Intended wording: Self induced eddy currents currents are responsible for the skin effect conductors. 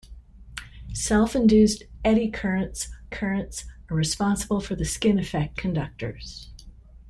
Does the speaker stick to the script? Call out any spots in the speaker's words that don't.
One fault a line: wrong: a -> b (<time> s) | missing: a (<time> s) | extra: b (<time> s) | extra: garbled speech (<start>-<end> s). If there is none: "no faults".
no faults